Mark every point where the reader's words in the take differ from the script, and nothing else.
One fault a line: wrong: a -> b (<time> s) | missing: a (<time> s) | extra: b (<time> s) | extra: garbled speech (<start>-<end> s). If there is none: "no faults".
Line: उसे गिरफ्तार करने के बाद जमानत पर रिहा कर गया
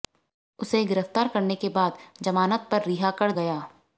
no faults